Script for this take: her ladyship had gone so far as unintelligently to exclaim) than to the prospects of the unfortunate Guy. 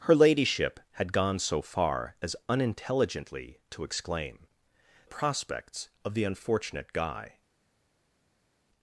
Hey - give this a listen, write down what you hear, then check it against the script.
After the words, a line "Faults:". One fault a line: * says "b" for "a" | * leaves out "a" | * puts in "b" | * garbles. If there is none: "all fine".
her ladyship had gone so far as unintelligently to exclaim) prospects of the unfortunate Guy.
Faults:
* leaves out "than to the"